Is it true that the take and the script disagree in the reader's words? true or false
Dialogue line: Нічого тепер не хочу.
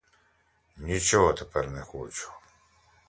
false